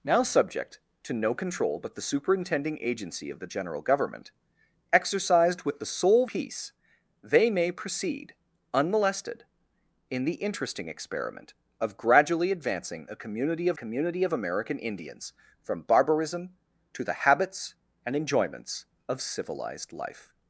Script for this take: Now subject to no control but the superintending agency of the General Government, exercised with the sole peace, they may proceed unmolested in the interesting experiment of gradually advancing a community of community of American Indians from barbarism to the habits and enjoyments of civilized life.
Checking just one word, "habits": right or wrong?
right